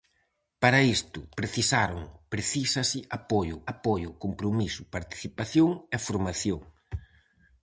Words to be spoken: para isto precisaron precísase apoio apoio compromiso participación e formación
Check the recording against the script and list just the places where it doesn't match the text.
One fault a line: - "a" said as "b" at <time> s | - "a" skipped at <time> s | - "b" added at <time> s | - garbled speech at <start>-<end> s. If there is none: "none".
none